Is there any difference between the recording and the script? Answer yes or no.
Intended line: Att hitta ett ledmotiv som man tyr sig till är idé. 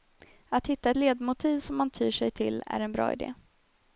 yes